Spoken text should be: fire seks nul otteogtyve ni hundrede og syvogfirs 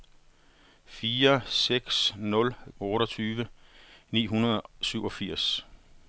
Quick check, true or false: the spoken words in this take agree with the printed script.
true